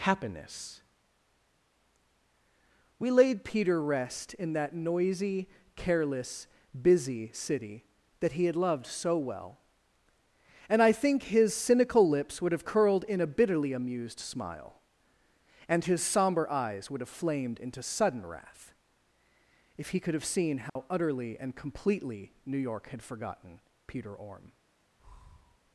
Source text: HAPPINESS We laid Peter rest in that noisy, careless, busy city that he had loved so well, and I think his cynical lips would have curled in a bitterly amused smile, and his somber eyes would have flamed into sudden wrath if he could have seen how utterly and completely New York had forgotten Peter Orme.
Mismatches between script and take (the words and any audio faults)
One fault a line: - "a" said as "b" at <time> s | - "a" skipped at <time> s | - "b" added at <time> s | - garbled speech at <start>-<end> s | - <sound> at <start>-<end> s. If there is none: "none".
- dropout at 20.7-20.8 s
- breath at 25.0-25.6 s